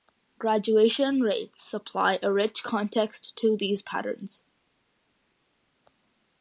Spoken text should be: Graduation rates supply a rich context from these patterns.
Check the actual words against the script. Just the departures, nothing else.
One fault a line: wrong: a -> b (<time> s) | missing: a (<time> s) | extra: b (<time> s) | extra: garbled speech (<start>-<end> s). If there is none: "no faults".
wrong: from -> to (3.4 s)